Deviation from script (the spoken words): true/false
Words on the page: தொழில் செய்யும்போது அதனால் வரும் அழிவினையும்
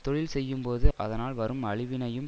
false